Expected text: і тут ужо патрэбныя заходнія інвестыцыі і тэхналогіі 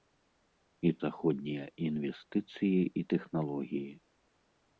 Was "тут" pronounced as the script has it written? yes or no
no